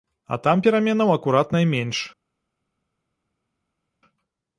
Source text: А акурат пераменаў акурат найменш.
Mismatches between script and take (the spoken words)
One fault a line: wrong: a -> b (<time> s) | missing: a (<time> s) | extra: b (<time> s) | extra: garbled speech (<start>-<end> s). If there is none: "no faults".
wrong: акурат -> там (0.5 s)